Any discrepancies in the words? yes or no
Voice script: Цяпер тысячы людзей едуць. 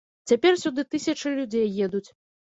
yes